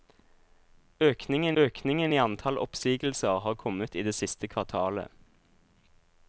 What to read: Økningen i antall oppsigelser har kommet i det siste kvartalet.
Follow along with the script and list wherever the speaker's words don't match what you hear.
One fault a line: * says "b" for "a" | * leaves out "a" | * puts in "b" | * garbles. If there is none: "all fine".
* puts in "økningen"